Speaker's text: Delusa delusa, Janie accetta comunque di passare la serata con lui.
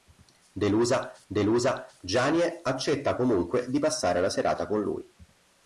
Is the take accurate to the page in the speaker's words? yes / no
yes